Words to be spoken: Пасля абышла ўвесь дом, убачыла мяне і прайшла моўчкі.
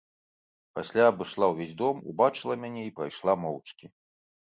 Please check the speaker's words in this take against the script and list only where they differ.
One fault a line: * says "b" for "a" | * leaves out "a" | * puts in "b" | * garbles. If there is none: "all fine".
all fine